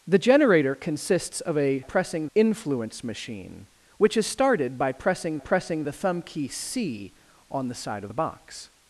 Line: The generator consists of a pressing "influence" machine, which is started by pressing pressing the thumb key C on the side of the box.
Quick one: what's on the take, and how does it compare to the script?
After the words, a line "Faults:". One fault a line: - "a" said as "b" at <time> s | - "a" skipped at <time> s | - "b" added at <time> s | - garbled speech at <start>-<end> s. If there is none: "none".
The generator consists of a pressing "influence" machine, which is started by pressing pressing the thumb key C on the side of the box.
Faults:
none